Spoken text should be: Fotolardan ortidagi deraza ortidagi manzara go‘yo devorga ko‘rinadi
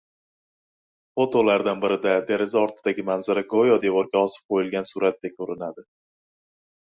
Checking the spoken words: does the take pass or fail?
fail